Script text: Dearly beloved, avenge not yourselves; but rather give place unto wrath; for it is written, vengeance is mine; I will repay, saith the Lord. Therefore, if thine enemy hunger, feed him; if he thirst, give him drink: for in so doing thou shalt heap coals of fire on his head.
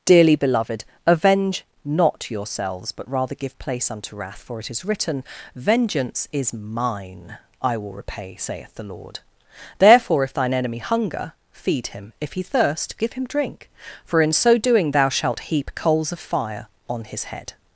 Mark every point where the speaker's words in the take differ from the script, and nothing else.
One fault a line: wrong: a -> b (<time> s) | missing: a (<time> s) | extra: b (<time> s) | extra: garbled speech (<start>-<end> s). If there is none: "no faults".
no faults